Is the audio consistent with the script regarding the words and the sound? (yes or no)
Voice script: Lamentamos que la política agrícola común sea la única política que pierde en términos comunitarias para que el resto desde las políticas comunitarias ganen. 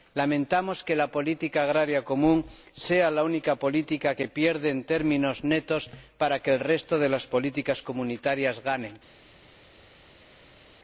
no